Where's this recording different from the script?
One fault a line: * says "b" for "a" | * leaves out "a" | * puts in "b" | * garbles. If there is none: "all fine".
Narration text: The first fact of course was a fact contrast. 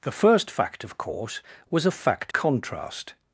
all fine